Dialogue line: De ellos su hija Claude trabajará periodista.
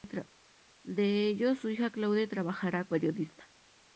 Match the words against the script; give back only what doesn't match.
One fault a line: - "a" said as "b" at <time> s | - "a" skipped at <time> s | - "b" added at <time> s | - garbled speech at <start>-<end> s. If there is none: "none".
none